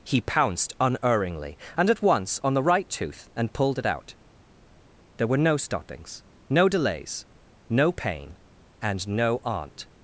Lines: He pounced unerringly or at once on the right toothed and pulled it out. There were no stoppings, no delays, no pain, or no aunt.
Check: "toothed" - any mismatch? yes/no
yes